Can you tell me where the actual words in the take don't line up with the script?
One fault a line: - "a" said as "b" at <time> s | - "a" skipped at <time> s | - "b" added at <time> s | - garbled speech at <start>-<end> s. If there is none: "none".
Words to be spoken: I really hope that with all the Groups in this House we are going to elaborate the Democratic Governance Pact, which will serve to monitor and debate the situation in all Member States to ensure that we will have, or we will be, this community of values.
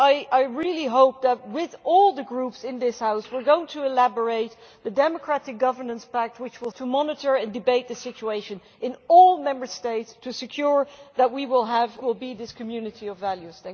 - "serve" skipped at 6.7 s
- "or we" skipped at 11.9 s